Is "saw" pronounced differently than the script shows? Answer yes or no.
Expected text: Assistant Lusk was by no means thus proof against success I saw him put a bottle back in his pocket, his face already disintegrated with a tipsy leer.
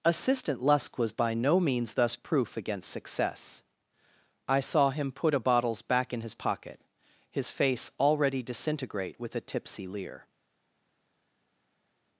no